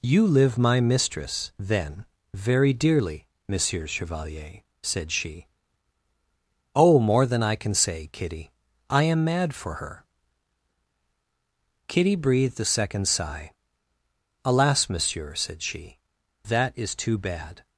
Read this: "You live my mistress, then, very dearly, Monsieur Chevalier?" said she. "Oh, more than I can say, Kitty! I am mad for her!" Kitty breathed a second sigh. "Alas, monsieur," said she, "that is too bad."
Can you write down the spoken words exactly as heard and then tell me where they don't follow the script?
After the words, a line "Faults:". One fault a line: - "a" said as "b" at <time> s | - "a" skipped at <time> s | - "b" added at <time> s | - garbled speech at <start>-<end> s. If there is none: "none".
"You live my mistress, then, very dearly, Monsieur Chevalier?" said she. "Oh, more than I can say, Kitty! I am mad for her!" Kitty breathed a second sigh. "Alas, monsieur," said she, "that is too bad."
Faults:
none